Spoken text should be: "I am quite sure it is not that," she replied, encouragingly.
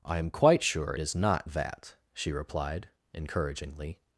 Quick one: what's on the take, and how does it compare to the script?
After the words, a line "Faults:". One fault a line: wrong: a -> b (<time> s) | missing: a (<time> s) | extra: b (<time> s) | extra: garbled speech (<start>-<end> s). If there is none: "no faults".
"I am quite sure is not that," she replied, encouragingly.
Faults:
missing: it (0.9 s)